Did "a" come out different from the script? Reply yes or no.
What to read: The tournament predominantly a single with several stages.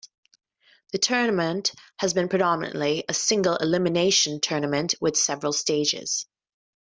no